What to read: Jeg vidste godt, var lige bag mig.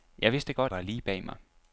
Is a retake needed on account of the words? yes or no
no